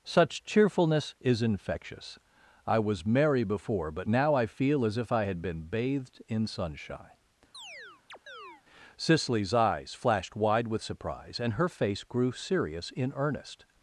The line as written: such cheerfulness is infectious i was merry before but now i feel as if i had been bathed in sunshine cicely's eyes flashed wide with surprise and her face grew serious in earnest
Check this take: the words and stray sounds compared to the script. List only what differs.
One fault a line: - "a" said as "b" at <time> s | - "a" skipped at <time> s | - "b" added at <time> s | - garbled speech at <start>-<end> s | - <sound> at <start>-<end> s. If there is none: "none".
- chirp at 7.5-8.6 s